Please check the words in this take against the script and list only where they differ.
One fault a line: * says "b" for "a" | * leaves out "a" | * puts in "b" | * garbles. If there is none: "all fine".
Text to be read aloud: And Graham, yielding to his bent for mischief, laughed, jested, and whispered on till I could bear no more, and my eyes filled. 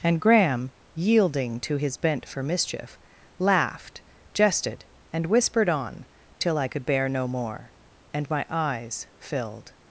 all fine